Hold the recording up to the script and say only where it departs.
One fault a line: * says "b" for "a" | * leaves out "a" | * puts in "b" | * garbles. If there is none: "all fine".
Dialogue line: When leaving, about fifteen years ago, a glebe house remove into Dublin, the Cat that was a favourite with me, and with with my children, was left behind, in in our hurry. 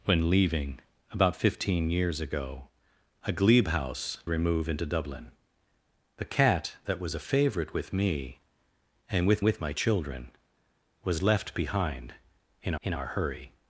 all fine